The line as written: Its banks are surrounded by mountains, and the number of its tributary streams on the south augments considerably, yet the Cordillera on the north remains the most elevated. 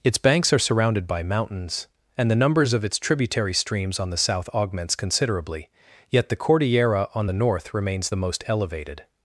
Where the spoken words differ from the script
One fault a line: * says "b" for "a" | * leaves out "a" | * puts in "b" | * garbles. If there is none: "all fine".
* says "numbers" for "number"